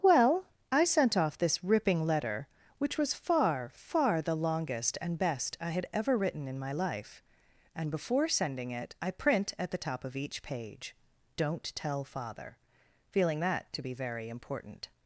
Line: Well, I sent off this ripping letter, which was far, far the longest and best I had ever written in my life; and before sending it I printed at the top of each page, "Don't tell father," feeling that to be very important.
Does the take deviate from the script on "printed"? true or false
true